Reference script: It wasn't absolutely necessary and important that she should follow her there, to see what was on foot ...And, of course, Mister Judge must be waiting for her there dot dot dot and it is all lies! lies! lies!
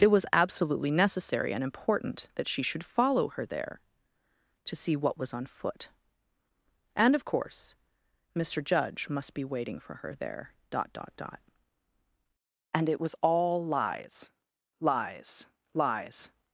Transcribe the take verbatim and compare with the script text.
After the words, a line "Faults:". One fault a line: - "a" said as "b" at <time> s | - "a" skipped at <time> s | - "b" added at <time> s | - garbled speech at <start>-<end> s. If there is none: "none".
It was absolutely necessary and important that she should follow her there, to see what was on foot ...And, of course, Mister Judge must be waiting for her there dot dot dot and it was all lies! lies! lies!
Faults:
- "wasn't" said as "was" at 0.1 s
- "is" said as "was" at 13.0 s